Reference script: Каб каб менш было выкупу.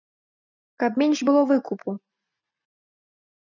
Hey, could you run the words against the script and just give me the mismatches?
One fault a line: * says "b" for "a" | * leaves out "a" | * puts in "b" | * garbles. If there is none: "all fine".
* leaves out "каб"